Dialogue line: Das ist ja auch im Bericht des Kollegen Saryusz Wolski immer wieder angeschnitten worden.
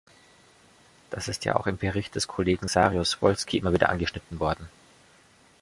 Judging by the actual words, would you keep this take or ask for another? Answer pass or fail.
pass